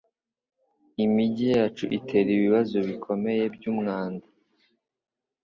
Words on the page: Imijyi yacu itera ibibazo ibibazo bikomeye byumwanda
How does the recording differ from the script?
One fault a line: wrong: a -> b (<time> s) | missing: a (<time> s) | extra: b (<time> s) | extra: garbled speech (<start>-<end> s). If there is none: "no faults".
missing: ibibazo (2.8 s)